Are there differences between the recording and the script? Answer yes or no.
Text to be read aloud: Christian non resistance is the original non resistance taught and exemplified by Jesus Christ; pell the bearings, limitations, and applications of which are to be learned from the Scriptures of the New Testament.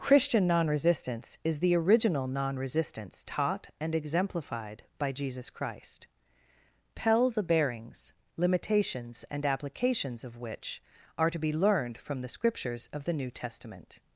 no